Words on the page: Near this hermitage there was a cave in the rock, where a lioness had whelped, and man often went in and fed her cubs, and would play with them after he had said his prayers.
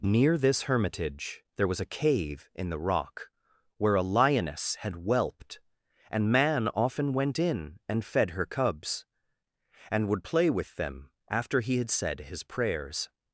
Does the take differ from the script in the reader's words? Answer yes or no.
no